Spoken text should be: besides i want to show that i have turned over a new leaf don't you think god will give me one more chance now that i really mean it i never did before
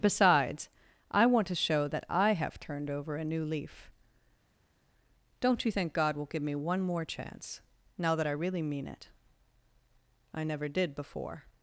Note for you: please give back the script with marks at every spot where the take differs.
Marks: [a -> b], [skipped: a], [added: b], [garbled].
besides i want to show that i have turned over a new leaf don't you think god will give me one more chance now that i really mean it i never did before